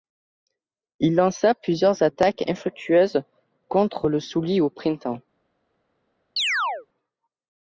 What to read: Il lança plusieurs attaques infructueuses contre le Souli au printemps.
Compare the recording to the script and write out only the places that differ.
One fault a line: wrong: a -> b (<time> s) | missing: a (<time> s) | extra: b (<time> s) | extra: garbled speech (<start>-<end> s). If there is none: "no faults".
no faults